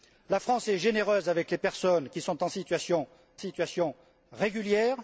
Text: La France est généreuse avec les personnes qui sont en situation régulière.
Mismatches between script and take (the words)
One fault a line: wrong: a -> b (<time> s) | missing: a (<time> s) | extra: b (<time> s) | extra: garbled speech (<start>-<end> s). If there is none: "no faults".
extra: situation (3.4 s)